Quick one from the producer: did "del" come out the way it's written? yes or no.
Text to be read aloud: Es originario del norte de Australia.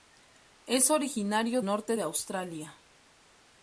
no